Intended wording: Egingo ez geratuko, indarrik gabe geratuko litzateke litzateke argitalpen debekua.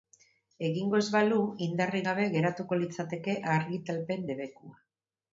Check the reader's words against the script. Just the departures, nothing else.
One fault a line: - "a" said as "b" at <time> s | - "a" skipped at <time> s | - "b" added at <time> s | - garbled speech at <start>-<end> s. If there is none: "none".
- "geratuko" said as "balu" at 1.2 s
- "litzateke" skipped at 3.3 s